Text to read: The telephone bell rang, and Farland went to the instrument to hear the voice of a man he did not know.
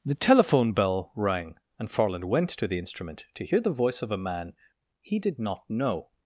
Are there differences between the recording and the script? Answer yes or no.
no